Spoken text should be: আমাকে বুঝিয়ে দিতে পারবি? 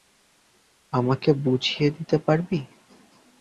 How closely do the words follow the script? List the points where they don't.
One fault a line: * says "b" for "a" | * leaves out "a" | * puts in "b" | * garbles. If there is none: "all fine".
all fine